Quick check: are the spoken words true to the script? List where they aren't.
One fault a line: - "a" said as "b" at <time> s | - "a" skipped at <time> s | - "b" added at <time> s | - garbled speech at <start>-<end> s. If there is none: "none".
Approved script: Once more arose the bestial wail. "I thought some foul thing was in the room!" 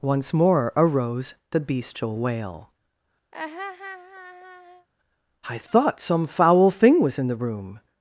none